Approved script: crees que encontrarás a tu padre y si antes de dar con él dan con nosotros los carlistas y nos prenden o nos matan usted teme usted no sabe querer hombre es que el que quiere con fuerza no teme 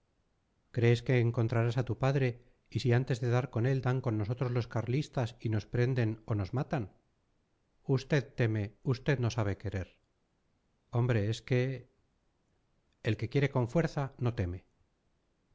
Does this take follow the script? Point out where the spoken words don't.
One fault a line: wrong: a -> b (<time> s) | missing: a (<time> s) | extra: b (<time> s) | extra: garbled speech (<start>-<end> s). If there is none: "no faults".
no faults